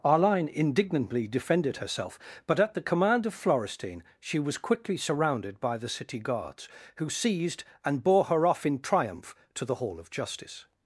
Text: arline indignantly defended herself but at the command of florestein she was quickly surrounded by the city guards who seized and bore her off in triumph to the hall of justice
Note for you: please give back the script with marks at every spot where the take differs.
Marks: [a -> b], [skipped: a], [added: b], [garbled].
arline indignantly defended herself but at the command of florestein she was quickly surrounded by the city guards who seized and bore her off in triumph to the hall of justice